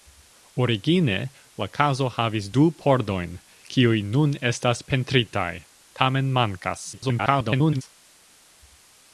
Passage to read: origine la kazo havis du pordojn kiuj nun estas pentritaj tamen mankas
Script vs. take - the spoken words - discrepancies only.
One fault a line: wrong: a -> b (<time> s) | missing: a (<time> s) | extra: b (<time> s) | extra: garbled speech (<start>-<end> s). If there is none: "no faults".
extra: garbled speech (6.9-7.8 s)